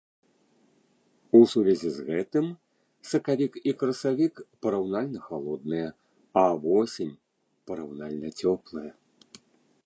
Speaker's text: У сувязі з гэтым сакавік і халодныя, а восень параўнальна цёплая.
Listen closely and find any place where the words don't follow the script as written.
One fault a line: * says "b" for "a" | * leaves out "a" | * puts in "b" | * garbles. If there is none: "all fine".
* puts in "красавік параўнальна"